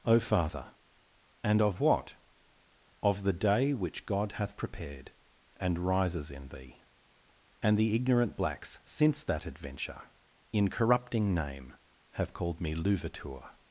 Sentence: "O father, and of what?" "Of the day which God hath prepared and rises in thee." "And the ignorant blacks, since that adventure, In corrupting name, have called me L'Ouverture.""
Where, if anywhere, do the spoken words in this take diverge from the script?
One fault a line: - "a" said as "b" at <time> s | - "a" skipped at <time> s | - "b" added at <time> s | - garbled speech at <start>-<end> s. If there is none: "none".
none